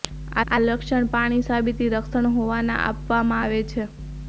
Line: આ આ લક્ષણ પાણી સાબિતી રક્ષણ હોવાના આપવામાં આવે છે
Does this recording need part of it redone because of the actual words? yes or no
no